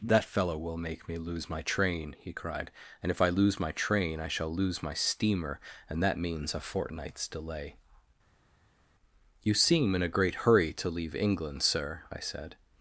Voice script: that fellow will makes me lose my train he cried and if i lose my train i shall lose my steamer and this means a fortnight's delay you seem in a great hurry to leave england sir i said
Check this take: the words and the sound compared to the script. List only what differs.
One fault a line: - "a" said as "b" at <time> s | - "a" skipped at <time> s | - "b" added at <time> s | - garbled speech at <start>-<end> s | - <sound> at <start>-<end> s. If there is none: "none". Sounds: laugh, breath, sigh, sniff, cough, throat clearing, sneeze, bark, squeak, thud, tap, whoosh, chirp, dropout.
- "makes" said as "make" at 0.8 s
- "this" said as "that" at 6.0 s